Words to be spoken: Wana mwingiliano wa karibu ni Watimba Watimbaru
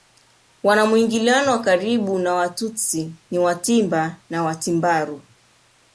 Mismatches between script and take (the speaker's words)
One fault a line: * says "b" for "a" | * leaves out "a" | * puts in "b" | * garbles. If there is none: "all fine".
* puts in "na Watutsi"
* puts in "na"